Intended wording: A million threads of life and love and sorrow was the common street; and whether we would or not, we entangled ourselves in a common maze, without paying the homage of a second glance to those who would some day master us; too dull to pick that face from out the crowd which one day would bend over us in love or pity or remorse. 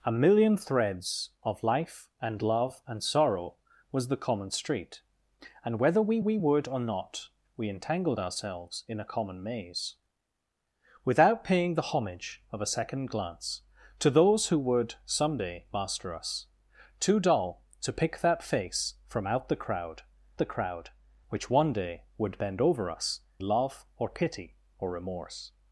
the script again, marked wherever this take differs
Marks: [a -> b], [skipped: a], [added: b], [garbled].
A million threads of life and love and sorrow was the common street; and whether we [added: we] would or not, we entangled ourselves in a common maze, without paying the homage of a second glance to those who would some day master us; too dull to pick that face from out the crowd [added: the crowd] which one day would bend over us [skipped: in] love or pity or remorse.